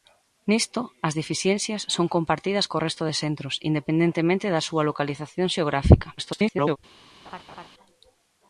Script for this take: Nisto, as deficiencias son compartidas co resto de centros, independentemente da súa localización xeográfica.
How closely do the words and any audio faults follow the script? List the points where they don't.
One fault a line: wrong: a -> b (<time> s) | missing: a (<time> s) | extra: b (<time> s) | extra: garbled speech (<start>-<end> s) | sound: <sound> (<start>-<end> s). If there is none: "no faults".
extra: garbled speech (6.2-6.8 s)
sound: laugh (7.2-7.7 s)